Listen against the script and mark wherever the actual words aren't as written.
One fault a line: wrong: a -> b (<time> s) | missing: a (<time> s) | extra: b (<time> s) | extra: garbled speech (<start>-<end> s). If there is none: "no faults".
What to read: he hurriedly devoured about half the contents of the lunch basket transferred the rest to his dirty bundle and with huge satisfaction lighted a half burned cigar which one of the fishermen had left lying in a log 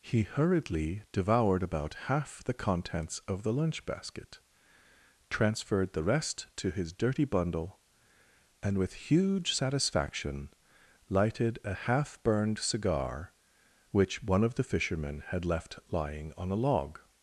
wrong: in -> on (16.4 s)